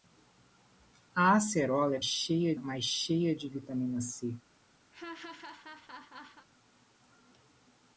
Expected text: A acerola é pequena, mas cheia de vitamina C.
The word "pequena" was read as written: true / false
false